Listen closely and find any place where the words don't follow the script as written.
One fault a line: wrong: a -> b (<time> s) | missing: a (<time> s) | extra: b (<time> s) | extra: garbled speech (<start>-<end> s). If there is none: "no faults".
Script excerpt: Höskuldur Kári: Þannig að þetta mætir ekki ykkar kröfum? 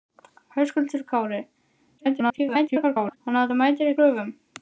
extra: garbled speech (2.0-3.2 s)
missing: ekki ykkar (3.9 s)